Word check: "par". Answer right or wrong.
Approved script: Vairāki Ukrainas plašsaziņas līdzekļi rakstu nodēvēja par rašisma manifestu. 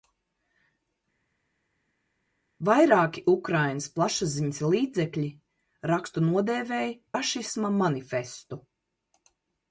wrong